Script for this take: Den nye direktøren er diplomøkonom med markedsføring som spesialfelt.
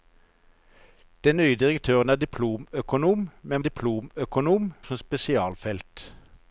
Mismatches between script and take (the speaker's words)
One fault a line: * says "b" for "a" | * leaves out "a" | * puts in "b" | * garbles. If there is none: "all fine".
* says "diplomøkonom" for "markedsføring"